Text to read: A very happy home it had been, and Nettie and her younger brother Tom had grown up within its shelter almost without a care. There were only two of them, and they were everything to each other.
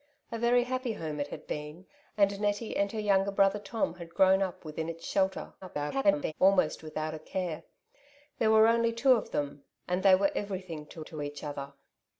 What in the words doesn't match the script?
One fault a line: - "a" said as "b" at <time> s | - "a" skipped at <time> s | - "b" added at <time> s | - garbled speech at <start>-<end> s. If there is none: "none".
- garbled speech at 5.6-6.3 s
- "to" added at 11.0 s